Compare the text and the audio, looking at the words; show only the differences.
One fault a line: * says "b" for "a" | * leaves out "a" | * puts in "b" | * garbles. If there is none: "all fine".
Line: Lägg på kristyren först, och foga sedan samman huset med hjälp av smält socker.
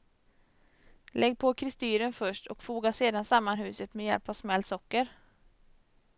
all fine